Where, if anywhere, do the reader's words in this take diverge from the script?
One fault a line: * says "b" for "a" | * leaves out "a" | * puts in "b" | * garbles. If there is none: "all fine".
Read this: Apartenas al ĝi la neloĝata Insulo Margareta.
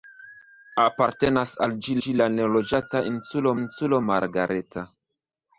* puts in "ĝi"
* puts in "Insulo"